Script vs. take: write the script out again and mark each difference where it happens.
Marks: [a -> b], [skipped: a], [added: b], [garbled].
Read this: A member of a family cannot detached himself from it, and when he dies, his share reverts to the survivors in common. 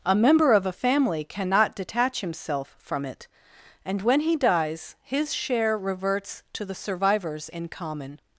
A member of a family cannot [detached -> detach] himself from it, and when he dies, his share reverts to the survivors in common.